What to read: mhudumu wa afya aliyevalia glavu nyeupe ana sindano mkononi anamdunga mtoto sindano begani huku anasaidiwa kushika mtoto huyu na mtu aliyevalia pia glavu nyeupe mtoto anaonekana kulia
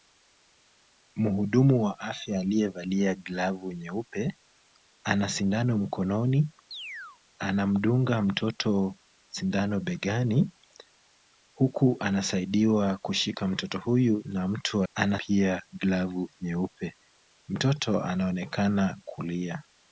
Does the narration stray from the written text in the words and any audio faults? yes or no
yes